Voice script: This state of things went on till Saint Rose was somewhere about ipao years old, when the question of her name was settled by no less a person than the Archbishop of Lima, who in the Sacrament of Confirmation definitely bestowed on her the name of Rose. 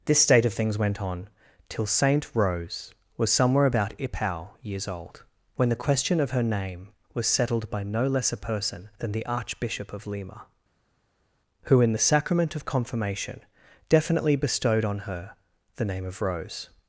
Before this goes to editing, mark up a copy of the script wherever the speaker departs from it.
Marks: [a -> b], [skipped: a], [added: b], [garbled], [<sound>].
This state of things went on till Saint Rose was somewhere about ipao years old, when the question of her name was settled by no less a person than the Archbishop of Lima, who in the Sacrament of Confirmation definitely bestowed on her the name of Rose.